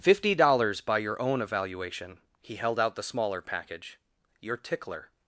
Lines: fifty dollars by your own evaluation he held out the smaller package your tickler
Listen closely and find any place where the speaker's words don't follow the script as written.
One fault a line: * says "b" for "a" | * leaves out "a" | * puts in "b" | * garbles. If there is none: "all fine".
all fine